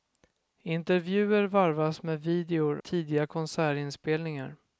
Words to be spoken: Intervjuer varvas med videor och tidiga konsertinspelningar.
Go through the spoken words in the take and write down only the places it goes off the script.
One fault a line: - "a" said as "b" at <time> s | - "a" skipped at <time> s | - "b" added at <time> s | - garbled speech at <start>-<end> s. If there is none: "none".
- "och" skipped at 2.8 s